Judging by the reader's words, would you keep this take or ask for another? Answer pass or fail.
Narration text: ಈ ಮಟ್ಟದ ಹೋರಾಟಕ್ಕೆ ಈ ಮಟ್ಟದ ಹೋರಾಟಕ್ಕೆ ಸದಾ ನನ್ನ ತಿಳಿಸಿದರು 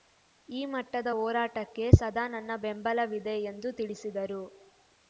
fail